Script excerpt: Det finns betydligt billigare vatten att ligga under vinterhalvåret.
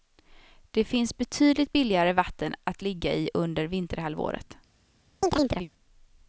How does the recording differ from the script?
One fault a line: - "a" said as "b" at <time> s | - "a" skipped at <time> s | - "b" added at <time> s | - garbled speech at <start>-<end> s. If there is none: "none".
- "i" added at 3.1 s